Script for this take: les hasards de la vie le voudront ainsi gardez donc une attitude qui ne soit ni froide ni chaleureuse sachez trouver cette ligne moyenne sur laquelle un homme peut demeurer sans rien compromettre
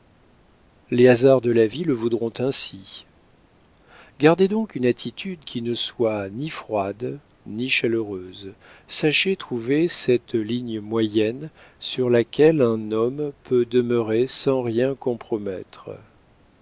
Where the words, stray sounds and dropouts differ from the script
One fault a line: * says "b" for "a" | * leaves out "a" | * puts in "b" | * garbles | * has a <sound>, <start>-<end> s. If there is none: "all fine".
all fine